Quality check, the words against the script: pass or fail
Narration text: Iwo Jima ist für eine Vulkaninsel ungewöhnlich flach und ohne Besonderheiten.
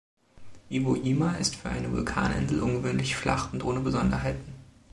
pass